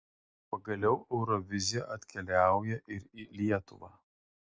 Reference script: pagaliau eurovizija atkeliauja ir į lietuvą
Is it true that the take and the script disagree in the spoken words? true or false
false